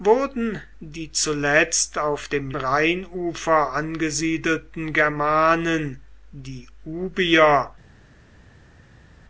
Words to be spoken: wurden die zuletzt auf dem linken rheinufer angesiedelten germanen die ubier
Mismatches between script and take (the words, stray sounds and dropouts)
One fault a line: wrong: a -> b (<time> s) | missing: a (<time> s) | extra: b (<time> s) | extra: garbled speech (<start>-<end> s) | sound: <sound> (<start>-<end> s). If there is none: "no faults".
missing: linken (2.5 s)